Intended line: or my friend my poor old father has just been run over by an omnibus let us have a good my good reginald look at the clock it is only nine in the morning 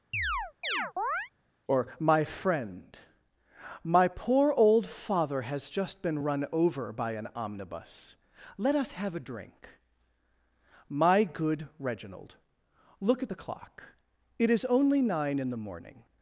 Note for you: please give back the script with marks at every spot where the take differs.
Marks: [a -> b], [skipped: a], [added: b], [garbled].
or my friend my poor old father has just been run over by an omnibus let us have a [good -> drink] my good reginald look at the clock it is only nine in the morning